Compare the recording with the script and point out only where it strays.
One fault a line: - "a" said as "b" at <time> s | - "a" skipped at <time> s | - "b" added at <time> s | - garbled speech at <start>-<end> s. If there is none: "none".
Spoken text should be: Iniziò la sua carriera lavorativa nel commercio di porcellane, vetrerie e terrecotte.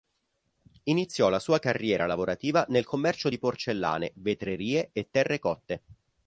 none